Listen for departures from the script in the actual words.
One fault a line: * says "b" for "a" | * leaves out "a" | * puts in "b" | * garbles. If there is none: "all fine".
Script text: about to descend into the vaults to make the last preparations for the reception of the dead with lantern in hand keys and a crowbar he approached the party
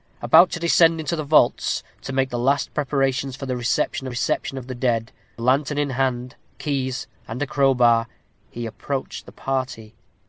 * puts in "reception"
* leaves out "with"